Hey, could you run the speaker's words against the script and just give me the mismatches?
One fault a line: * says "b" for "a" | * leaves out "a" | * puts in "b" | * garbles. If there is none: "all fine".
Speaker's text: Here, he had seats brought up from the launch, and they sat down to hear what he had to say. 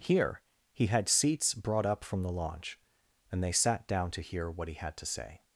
all fine